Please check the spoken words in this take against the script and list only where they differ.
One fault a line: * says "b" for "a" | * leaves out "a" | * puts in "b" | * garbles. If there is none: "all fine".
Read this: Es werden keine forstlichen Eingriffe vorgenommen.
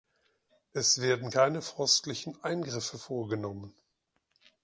all fine